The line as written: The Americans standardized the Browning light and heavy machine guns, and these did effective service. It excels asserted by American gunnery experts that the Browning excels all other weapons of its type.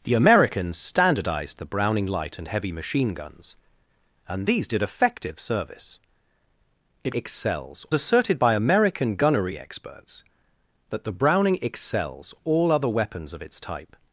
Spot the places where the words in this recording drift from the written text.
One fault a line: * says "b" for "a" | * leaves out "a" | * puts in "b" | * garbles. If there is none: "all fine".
all fine